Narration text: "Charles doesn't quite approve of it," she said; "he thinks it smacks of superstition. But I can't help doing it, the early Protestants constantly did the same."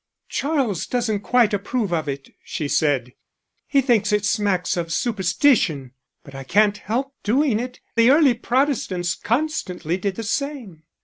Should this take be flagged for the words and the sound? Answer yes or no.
no